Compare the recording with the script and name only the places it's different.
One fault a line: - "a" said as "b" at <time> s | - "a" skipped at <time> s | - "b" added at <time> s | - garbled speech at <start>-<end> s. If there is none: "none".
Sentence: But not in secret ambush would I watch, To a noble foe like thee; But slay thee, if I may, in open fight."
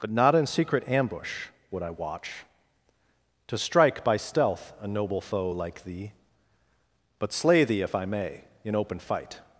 - "strike by stealth" added at 3.6 s